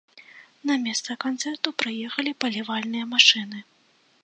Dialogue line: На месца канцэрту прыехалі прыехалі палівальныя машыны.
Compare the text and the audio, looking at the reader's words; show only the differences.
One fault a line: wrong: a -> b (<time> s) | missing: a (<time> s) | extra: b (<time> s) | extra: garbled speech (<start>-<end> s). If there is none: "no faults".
missing: прыехалі (2.4 s)